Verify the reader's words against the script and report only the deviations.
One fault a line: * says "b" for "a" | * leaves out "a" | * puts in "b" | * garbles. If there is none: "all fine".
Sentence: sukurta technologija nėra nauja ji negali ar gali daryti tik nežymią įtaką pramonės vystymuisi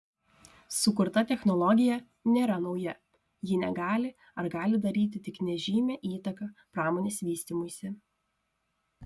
all fine